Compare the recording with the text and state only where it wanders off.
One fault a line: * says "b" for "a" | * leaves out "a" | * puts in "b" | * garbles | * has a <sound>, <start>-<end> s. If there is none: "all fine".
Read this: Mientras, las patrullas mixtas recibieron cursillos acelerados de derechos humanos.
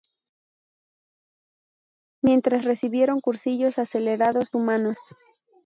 * leaves out "las patrullas mixtas"
* leaves out "de derechos"